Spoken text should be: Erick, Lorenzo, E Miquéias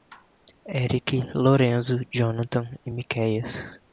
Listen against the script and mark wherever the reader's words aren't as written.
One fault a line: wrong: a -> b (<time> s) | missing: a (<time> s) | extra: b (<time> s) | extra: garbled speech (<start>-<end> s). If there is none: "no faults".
extra: Jonathan (2.1 s)